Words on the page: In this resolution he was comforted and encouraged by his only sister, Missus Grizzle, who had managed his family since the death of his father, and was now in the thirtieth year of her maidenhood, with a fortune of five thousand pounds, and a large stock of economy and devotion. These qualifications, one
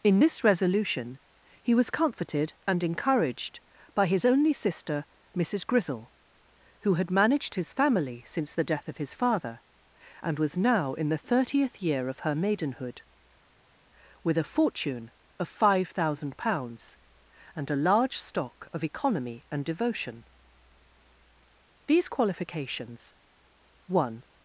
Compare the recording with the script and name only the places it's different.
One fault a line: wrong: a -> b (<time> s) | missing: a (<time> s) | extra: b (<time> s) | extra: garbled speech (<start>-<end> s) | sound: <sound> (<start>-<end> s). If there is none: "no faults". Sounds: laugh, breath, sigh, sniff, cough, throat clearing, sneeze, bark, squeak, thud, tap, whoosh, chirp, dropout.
no faults